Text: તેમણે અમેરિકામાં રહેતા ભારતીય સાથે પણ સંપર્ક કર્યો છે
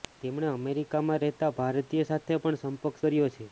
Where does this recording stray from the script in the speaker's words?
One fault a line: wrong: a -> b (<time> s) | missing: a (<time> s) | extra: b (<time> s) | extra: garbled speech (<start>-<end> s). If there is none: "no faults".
no faults